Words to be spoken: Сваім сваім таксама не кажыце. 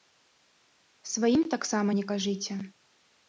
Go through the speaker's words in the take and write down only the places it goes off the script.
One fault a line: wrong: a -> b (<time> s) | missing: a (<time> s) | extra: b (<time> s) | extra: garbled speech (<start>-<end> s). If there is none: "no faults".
missing: сваім (1.4 s)